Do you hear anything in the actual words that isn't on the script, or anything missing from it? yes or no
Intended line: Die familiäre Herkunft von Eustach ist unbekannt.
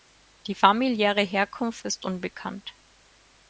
yes